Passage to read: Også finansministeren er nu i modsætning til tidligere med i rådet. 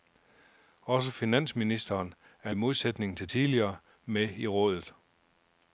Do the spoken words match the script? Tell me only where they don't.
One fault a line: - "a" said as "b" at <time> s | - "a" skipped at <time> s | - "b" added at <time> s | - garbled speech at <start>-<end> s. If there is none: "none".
- "nu" skipped at 2.5 s